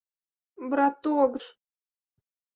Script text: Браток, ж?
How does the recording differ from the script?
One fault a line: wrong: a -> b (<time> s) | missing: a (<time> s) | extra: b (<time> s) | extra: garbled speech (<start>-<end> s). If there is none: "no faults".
no faults